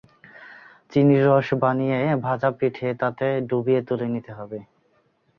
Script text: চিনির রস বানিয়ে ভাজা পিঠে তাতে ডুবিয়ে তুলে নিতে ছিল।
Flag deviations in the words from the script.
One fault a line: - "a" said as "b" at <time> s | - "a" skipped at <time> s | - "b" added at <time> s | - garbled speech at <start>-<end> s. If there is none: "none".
- "ছিল" said as "হবে" at 4.4 s